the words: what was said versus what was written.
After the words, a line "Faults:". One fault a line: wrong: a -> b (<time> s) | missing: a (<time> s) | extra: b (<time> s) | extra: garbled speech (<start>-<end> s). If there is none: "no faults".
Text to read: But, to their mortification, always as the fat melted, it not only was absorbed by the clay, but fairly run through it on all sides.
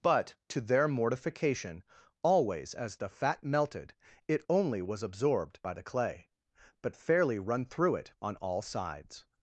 But, to their mortification, always as the fat melted, it only was absorbed by the clay, but fairly run through it on all sides.
Faults:
missing: not (4.4 s)